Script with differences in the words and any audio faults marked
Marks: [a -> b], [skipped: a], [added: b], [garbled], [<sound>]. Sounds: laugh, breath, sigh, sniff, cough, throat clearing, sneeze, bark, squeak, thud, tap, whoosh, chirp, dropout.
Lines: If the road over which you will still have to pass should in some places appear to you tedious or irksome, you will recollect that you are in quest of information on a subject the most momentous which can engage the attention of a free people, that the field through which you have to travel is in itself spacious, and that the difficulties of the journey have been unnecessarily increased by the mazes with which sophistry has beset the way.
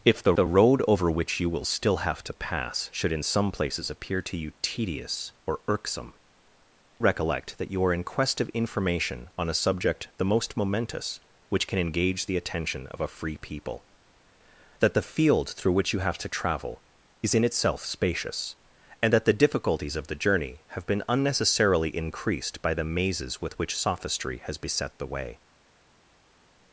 If the [added: the] road over which you will still have to pass should in some places appear to you tedious or irksome, [skipped: you will] recollect that you are in quest of information on a subject the most momentous which can engage the attention of a free people, that the field through which you have to travel is in itself spacious, and that the difficulties of the journey have been unnecessarily increased by the mazes with which sophistry has beset the way.